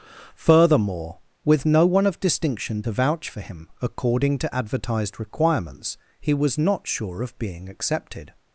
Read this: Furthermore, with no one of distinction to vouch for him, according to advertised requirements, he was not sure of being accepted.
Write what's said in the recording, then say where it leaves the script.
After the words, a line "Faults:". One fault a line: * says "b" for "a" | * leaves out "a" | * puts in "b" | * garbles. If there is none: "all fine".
Furthermore, with no one of distinction to vouch for him, according to advertised requirements, he was not sure of being accepted.
Faults:
all fine